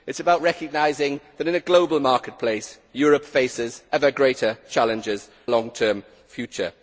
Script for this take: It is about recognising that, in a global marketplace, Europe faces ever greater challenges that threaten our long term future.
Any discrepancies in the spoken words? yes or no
yes